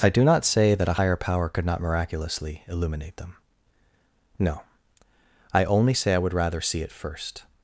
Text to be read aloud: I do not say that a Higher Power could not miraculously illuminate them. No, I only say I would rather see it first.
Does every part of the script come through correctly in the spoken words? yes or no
yes